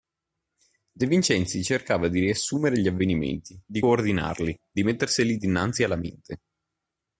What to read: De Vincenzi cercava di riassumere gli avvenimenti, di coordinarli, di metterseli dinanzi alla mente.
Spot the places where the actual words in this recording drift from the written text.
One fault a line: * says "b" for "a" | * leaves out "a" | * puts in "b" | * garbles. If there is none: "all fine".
all fine